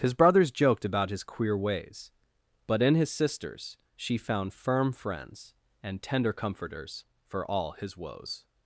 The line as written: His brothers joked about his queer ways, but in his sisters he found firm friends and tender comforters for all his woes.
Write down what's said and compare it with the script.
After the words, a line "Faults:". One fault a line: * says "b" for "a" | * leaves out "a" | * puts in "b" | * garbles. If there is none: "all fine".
His brothers joked about his queer ways, but in his sisters she found firm friends and tender comforters for all his woes.
Faults:
* says "she" for "he"